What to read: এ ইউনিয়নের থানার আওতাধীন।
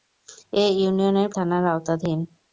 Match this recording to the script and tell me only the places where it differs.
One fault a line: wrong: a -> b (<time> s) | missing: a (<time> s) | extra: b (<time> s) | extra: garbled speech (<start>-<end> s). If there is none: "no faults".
no faults